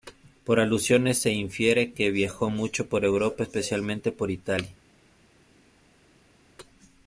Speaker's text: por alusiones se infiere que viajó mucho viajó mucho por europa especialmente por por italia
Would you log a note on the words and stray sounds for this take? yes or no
yes